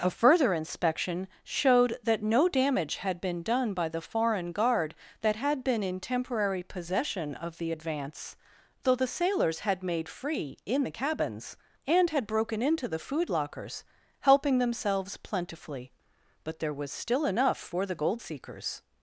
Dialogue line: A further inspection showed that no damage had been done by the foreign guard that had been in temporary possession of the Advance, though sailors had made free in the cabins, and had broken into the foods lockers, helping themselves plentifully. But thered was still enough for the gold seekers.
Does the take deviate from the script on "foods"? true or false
true